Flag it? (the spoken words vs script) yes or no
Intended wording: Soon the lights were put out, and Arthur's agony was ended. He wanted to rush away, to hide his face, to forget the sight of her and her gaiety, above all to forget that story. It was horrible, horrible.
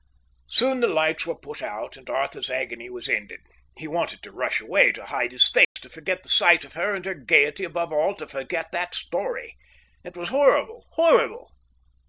no